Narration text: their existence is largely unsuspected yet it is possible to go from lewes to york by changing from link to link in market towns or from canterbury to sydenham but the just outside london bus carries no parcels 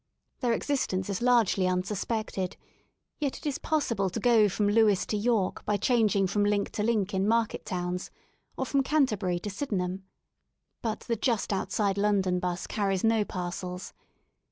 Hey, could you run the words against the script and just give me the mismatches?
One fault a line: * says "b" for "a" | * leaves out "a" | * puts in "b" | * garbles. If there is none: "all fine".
all fine